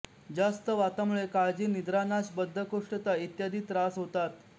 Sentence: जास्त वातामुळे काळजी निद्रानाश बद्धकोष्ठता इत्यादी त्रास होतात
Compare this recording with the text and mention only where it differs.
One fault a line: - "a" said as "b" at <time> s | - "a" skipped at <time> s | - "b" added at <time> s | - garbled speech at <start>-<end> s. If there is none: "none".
none